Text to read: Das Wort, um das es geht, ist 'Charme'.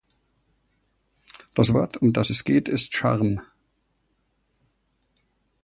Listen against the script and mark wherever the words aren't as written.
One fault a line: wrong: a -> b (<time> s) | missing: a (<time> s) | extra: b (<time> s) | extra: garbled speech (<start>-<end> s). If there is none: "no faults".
no faults